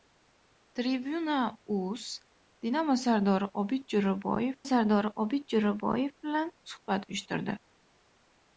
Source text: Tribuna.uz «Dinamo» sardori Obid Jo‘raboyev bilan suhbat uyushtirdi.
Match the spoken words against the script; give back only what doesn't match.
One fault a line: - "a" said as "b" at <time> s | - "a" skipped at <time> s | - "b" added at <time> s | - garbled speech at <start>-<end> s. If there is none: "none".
- "sardori Obid Jo‘raboyev" added at 4.7 s